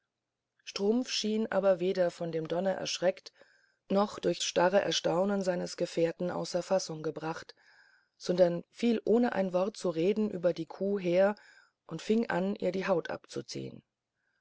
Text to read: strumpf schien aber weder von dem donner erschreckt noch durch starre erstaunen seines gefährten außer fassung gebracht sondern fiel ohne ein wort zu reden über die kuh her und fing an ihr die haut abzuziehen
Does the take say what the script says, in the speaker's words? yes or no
yes